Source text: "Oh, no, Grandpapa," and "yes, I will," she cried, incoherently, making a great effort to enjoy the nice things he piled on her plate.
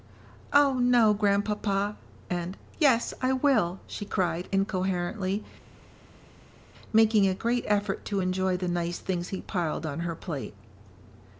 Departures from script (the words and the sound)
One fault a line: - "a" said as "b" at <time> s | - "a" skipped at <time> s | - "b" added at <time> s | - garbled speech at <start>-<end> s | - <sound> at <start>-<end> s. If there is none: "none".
none